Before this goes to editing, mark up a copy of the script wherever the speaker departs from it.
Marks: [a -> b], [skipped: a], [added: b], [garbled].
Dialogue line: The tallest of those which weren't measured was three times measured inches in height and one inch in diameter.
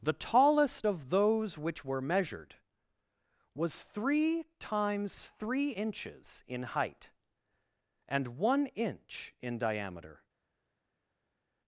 The tallest of those which [weren't -> were] measured was three times [measured -> three] inches in height and one inch in diameter.